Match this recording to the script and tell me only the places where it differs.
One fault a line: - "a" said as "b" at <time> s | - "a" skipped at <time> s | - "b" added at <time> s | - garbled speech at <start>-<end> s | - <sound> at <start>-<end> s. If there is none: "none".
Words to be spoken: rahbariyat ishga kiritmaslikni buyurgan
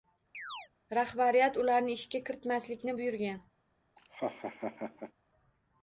- chirp at 0.3-0.7 s
- "ularni" added at 1.6 s
- laugh at 4.0-5.1 s